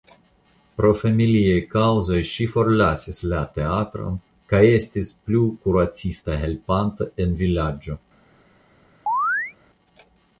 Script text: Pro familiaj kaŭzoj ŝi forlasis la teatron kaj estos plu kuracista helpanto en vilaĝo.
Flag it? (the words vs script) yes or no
yes